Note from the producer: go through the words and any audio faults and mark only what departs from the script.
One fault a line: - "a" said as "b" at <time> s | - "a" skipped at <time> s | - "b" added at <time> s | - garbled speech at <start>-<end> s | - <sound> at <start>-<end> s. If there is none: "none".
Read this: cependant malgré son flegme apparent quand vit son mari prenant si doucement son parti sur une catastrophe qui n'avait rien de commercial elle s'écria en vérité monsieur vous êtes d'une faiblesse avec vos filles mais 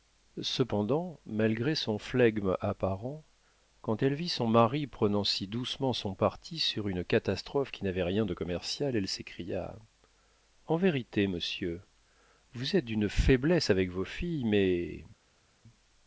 - "elle" added at 4.0 s